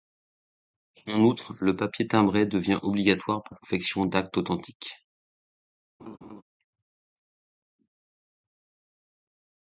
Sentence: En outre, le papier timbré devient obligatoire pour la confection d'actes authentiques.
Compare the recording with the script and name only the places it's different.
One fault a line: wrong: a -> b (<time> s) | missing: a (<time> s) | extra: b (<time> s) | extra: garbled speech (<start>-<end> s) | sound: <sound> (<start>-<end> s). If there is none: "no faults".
missing: la (3.5 s)
sound: laugh (6.0-6.4 s)